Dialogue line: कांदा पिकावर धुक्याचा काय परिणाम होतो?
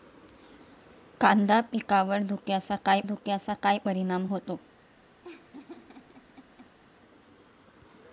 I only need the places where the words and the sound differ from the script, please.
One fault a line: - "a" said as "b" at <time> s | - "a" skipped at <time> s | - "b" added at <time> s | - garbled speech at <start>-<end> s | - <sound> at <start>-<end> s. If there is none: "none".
- "धुक्याचा काय" added at 3.0 s
- laugh at 5.2-6.8 s